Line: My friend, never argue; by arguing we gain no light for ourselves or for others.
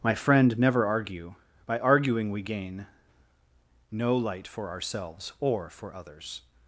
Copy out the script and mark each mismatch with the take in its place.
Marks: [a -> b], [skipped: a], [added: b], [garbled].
My friend, never argue; by arguing we gain no light for ourselves or for others.